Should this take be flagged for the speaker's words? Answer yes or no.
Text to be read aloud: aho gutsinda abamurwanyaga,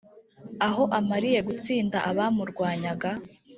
yes